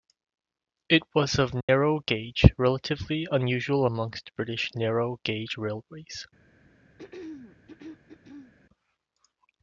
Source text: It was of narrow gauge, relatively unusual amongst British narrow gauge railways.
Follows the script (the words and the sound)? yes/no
no